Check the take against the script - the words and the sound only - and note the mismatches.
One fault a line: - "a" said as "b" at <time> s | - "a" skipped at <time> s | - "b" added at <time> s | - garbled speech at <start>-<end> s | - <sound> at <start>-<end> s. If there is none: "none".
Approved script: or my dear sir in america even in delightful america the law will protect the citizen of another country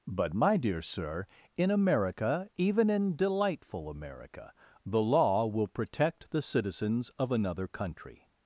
- "or" said as "but" at 0.1 s
- "citizen" said as "citizens" at 6.4 s